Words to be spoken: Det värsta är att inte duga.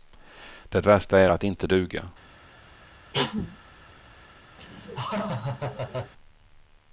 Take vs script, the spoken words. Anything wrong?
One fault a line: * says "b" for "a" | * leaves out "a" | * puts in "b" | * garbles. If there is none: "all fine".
all fine